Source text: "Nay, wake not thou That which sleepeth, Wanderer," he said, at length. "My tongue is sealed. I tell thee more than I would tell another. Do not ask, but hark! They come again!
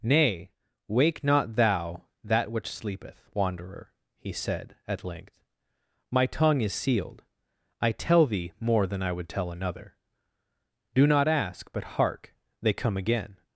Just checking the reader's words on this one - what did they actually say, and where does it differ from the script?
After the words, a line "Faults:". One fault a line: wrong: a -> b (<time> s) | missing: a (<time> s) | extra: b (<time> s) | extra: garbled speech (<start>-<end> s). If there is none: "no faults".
"Nay, wake not thou That which sleepeth, Wanderer," he said, at length. "My tongue is sealed. I tell thee more than I would tell another. Do not ask, but hark! They come again!
Faults:
no faults